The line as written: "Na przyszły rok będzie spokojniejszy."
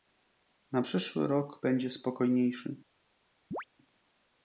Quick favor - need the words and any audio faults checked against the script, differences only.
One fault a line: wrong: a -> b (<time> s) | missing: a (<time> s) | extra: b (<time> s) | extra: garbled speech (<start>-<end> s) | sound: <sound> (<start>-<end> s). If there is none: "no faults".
sound: chirp (3.5-3.6 s)